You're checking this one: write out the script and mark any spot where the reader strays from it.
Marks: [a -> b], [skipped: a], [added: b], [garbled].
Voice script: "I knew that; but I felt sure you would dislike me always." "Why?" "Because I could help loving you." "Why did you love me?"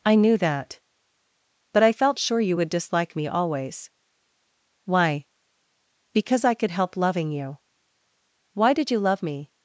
"I knew that; but I felt sure you would dislike me always." "Why?" "Because I could help loving you." "Why did you love me?"